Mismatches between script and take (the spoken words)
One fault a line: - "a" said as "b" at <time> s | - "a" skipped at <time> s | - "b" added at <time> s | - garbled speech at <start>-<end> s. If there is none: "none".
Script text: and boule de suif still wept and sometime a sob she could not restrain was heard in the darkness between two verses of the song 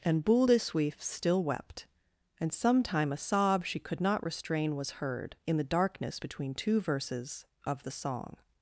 none